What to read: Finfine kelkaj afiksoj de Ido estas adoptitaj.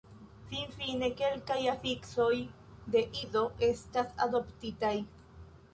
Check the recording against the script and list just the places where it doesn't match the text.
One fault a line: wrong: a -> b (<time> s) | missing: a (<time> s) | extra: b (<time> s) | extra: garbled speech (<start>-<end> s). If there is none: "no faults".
no faults